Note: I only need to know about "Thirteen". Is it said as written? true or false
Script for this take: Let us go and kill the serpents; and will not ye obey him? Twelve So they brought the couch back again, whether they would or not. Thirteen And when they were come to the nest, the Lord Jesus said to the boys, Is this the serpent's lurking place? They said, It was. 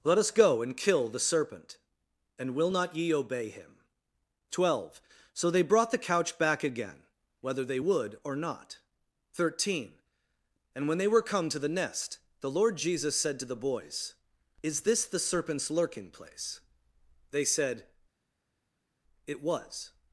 true